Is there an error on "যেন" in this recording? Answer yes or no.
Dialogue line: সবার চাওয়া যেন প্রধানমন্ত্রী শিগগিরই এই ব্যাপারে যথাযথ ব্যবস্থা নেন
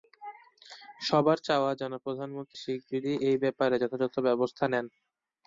no